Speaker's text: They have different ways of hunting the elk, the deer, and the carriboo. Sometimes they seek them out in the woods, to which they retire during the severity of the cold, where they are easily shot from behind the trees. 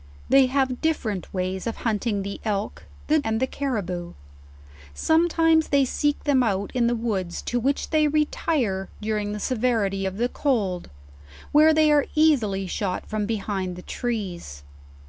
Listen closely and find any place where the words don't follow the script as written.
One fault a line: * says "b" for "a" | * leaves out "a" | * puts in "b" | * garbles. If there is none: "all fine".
* leaves out "deer"